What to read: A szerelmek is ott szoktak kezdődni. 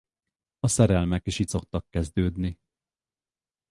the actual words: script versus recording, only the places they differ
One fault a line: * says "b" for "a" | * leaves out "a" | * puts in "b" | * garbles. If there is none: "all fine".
* says "itt" for "ott"